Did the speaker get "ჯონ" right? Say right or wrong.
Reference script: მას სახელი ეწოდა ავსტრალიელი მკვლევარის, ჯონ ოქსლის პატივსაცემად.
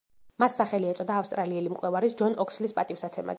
right